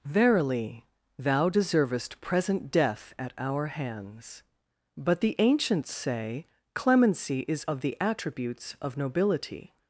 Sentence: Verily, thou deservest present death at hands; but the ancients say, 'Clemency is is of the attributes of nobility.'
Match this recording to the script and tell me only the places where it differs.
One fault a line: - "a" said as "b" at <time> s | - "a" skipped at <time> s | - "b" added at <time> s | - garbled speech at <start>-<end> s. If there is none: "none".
- "our" added at 3.4 s
- "is" skipped at 7.6 s